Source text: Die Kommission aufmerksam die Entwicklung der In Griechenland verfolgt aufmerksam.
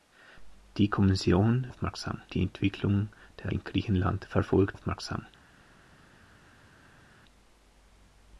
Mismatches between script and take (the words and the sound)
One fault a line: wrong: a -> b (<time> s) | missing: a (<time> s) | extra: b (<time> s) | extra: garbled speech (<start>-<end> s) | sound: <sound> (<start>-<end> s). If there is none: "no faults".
no faults